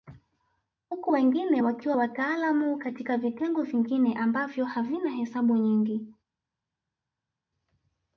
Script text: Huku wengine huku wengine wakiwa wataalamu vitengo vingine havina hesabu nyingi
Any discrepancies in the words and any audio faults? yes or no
yes